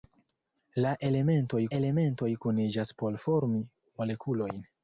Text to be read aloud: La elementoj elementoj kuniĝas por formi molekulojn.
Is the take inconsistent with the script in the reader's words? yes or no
no